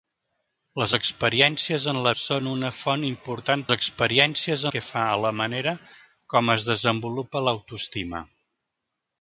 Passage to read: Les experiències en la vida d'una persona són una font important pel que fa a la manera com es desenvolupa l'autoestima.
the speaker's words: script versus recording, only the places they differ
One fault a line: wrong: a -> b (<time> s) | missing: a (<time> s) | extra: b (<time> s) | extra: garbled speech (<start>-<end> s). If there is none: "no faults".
missing: vida d'una persona (2.1 s)
wrong: pel -> experiències (3.7 s)